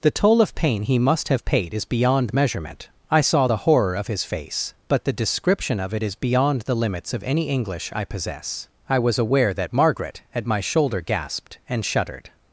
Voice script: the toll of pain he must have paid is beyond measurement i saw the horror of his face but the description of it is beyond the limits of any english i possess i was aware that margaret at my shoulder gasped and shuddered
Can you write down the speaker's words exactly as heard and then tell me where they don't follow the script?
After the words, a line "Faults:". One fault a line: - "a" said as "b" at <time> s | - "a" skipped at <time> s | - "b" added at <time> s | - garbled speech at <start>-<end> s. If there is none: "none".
the toll of pain he must have paid is beyond measurement i saw the horror of his face but the description of it is beyond the limits of any english i possess i was aware that margaret at my shoulder gasped and shuddered
Faults:
none